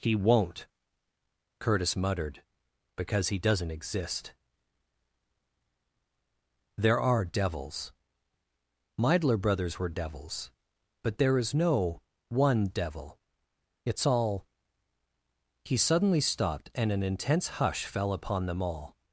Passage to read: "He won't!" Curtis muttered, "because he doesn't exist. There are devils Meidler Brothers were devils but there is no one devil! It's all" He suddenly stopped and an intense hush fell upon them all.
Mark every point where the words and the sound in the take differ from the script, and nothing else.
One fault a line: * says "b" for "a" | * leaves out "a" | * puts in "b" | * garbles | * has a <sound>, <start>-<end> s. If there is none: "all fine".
all fine